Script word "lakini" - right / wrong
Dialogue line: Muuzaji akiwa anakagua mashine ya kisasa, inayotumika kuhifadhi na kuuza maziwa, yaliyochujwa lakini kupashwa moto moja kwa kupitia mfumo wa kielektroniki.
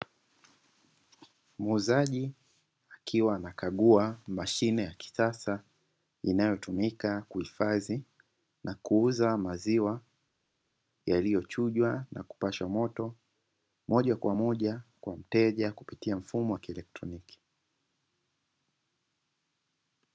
wrong